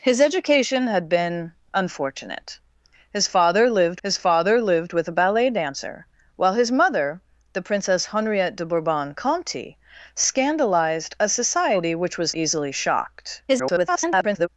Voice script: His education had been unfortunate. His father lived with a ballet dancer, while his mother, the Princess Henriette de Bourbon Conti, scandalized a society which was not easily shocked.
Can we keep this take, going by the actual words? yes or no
no